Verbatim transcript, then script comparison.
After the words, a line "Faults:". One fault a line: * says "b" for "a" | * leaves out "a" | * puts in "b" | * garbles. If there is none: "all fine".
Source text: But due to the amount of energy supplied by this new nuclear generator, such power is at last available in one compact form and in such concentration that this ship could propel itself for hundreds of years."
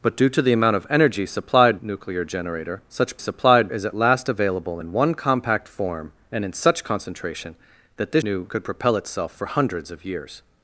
But due to the amount of energy supplied nuclear generator, such supplied is at last available in one compact form and in such concentration that this new could propel itself for hundreds of years."
Faults:
* leaves out "by this new"
* says "supplied" for "power"
* says "new" for "ship"